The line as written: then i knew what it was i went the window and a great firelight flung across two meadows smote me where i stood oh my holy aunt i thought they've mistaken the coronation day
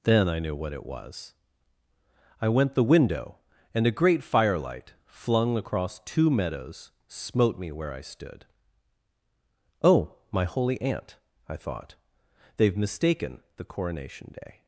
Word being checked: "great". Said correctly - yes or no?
yes